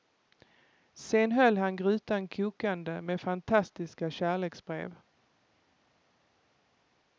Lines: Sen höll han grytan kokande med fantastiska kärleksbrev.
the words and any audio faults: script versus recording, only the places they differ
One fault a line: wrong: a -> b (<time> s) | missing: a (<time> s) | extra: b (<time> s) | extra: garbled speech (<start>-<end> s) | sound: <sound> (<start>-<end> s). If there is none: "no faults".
no faults